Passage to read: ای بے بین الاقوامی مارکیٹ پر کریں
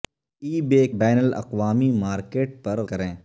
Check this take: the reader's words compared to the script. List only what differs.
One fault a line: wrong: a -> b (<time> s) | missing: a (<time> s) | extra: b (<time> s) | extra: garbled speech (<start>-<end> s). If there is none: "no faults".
no faults